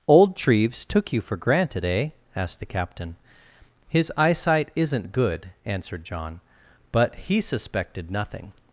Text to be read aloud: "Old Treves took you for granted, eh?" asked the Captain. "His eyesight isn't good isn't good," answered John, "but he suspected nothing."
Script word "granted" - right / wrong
right